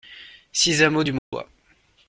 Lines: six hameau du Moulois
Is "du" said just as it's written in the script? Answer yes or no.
yes